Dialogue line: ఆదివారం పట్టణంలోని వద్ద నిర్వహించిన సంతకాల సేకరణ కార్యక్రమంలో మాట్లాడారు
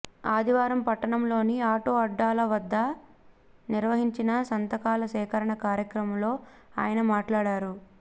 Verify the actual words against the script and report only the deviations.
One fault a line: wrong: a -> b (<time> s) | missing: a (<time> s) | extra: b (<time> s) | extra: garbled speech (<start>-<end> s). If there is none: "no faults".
extra: ఆటో అడ్డాల (1.7 s)
extra: ఆయన (6.8 s)